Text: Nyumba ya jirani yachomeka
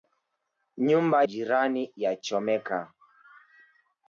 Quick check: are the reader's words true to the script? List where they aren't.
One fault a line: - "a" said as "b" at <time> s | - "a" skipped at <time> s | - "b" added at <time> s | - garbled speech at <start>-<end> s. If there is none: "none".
- "ya" skipped at 1.2 s